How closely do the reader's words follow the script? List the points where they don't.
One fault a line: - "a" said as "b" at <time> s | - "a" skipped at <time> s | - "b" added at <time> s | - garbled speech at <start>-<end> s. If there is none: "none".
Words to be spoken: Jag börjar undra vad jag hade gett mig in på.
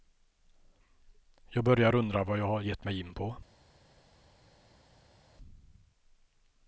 - "hade" said as "har" at 2.5 s